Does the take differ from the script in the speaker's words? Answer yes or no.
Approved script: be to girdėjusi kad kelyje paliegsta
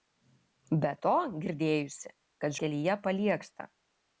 no